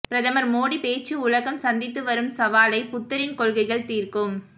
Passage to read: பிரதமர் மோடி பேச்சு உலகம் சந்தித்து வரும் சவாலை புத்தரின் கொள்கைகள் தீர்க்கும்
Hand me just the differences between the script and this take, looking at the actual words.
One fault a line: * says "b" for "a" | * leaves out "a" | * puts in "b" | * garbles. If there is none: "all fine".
all fine